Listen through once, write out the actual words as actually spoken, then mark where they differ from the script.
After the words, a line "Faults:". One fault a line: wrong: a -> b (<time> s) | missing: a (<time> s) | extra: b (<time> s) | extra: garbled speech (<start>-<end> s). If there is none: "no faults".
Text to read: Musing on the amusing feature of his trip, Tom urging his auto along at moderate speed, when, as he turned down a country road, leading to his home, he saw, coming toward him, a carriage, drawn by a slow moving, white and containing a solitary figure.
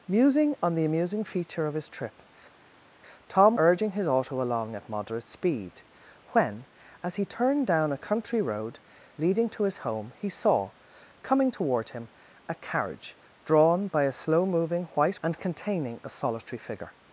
Musing on the amusing feature of his trip, Tom urging his auto along at moderate speed, when, as he turned down a country road, leading to his home, he saw, coming toward him, a carriage, drawn by a slow moving, white and containing a solitary figure.
Faults:
no faults